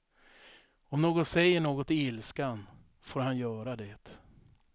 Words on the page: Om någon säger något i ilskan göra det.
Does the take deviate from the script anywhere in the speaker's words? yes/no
yes